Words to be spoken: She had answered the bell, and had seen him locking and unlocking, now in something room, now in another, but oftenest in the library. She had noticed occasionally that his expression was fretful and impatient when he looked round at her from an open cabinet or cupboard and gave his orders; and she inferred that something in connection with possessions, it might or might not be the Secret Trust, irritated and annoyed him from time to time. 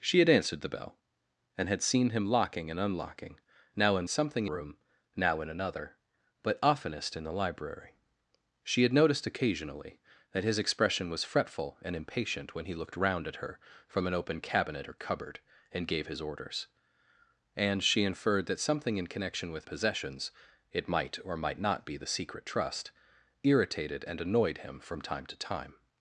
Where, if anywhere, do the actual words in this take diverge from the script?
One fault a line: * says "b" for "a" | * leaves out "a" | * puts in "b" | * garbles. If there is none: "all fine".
all fine